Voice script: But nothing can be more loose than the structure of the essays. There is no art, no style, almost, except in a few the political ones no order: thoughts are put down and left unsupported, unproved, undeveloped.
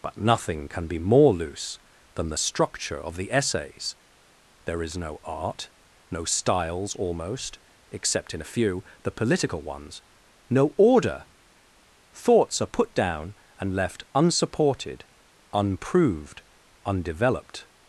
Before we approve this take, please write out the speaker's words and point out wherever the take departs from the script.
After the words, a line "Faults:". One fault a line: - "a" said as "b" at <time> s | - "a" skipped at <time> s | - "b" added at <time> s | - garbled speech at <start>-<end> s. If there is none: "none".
But nothing can be more loose than the structure of the essays. There is no art, no styles, almost, except in a few the political ones no order: thoughts are put down and left unsupported, unproved, undeveloped.
Faults:
- "style" said as "styles" at 6.2 s